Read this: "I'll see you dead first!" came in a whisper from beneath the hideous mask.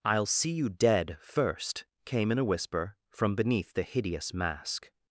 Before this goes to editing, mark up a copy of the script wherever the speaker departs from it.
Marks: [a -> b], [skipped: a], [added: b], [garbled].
"I'll see you dead first!" came in a whisper from beneath the hideous mask.